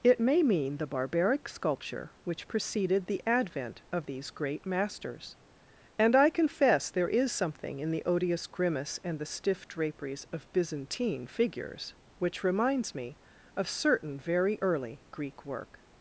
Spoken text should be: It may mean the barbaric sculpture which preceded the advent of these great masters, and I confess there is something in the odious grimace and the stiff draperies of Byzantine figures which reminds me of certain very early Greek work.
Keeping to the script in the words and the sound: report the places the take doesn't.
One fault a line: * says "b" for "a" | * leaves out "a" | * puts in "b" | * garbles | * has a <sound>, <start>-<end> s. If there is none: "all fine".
all fine